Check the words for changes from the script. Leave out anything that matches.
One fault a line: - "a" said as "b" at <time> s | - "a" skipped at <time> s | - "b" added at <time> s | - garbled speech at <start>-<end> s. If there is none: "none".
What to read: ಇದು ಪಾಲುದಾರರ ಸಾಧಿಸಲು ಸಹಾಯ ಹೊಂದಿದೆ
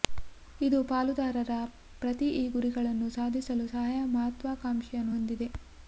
- "ಪ್ರತಿ ಈ ಗುರಿಗಳನ್ನು" added at 2.0 s
- "ಮಹತ್ವಾಕಾಂಕ್ಷೆಯನ್ನು" added at 4.2 s